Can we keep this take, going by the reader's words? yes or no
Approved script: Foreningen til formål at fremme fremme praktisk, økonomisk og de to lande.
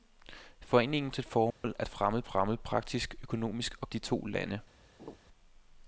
yes